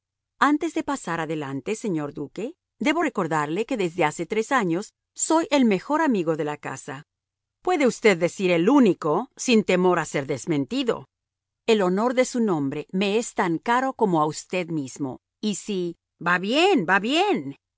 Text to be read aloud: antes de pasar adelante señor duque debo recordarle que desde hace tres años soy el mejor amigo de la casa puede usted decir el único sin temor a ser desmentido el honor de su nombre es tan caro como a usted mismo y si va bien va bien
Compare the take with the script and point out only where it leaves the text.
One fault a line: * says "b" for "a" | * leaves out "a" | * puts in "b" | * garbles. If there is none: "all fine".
* puts in "me"